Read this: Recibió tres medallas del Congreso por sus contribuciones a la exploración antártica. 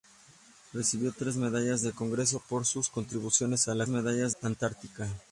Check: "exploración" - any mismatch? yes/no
yes